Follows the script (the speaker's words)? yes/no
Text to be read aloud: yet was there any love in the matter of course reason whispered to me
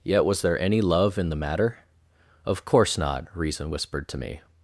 no